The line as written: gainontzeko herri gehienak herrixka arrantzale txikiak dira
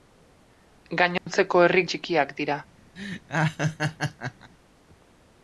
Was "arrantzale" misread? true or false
true